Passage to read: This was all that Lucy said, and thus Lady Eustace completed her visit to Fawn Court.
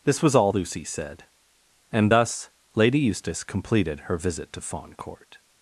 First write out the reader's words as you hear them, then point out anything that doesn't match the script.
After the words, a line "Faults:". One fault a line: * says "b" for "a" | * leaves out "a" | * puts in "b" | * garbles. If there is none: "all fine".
This was all Lucy said, and thus Lady Eustace completed her visit to Fawn Court.
Faults:
* leaves out "that"